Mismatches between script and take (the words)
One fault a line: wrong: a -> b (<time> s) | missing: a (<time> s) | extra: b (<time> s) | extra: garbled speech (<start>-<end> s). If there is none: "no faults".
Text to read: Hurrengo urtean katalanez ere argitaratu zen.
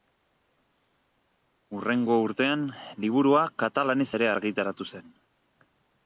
extra: liburua (3.0 s)